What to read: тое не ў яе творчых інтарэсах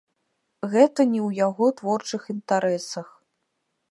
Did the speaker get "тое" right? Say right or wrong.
wrong